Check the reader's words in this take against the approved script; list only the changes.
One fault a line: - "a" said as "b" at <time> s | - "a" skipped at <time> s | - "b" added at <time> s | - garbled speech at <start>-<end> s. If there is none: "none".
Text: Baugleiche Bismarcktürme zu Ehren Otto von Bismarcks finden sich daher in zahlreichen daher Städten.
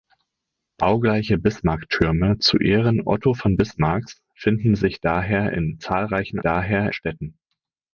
none